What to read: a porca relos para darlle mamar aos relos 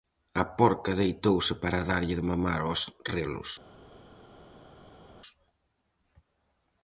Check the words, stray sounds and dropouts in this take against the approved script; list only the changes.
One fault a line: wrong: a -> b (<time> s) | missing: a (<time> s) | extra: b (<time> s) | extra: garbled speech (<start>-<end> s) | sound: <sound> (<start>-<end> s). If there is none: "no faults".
wrong: relos -> deitouse (1.0 s)
extra: de (2.2 s)